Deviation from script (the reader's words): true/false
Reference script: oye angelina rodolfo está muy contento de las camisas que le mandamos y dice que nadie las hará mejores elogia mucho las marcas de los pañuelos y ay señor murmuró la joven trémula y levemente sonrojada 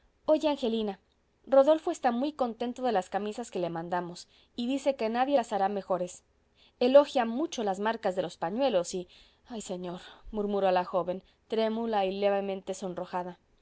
false